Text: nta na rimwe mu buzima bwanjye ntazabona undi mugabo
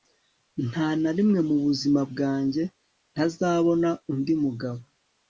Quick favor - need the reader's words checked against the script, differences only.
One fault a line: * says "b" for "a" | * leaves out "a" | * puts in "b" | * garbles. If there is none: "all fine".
all fine